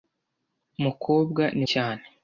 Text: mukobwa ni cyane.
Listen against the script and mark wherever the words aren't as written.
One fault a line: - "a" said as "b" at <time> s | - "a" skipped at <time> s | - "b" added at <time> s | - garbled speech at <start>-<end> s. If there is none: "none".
none